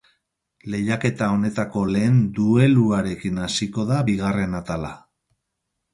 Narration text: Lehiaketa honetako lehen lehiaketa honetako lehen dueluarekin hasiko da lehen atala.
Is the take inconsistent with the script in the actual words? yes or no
yes